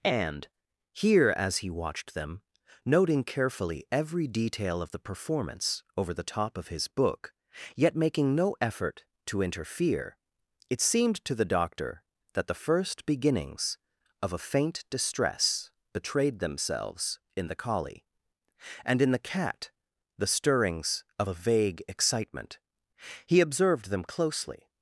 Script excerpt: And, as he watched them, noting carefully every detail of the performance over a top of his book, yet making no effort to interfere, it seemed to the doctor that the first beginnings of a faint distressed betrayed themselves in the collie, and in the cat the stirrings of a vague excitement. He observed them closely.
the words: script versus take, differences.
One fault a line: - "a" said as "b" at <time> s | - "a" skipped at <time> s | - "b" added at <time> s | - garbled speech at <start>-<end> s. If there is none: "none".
- "here" added at 0.9 s
- "a" said as "the" at 6.1 s
- "distressed" said as "distress" at 14.9 s